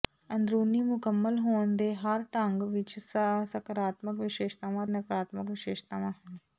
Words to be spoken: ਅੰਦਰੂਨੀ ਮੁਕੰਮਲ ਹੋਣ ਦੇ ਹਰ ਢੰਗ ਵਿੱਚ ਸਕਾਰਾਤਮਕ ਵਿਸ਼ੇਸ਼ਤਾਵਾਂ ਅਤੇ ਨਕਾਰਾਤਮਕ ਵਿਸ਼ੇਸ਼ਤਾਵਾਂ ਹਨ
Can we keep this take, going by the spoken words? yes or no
no